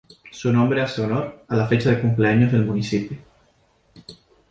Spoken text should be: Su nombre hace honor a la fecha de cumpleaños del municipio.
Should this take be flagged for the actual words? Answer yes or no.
no